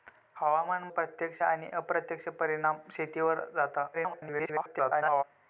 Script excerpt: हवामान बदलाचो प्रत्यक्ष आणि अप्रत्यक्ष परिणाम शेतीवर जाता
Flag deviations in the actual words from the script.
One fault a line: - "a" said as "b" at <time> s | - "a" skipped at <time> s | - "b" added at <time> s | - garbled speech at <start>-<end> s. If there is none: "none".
- "बदलाचो" skipped at 0.9 s
- garbled speech at 3.9-5.2 s